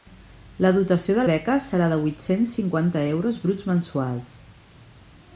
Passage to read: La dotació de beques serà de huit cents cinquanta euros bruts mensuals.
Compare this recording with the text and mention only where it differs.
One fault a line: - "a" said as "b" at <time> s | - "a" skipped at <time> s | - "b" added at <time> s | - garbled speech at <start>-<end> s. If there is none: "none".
none